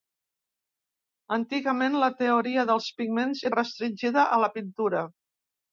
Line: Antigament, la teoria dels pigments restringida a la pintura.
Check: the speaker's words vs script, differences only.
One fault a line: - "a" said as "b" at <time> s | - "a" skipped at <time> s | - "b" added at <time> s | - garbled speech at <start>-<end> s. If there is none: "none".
none